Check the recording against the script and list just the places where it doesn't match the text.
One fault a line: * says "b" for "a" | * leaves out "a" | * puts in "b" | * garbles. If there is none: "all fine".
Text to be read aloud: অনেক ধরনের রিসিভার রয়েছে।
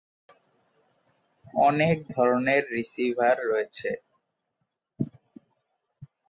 all fine